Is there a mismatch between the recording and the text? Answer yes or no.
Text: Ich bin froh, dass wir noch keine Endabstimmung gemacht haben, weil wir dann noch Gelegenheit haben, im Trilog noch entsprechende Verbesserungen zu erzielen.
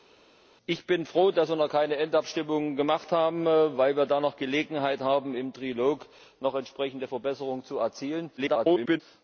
yes